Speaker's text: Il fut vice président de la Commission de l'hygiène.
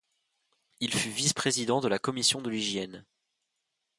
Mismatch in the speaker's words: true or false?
false